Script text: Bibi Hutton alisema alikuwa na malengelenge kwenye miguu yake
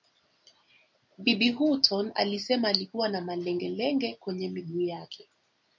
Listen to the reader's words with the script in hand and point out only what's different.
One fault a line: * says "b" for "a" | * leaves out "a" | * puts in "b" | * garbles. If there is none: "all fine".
all fine